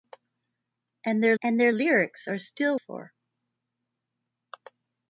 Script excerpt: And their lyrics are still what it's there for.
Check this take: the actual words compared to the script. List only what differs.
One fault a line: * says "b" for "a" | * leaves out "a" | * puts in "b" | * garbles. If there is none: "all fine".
* puts in "and their"
* leaves out "what it's there"